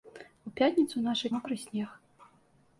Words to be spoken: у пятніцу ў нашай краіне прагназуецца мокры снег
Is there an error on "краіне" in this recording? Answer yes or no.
yes